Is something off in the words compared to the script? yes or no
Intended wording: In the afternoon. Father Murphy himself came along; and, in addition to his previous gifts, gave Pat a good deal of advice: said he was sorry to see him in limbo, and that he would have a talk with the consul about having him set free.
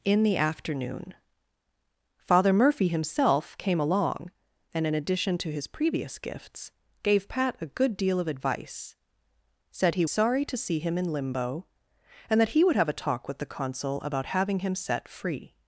yes